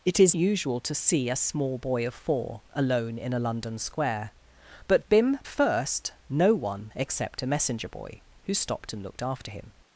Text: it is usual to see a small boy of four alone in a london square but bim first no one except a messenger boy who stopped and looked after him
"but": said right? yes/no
yes